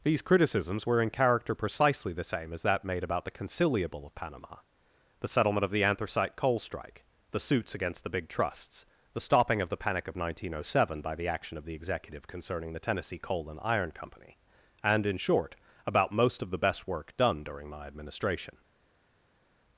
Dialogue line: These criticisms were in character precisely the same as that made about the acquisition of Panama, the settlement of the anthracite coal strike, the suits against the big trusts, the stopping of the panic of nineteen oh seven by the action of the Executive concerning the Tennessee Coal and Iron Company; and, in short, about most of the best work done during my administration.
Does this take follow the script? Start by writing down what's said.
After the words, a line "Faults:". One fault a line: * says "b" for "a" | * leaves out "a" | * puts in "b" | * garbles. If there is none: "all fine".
These criticisms were in character precisely the same as that made about the conciliable of Panama, the settlement of the anthracite coal strike, the suits against the big trusts, the stopping of the panic of nineteen oh seven by the action of the Executive concerning the Tennessee Coal and Iron Company; and, in short, about most of the best work done during my administration.
Faults:
* says "conciliable" for "acquisition"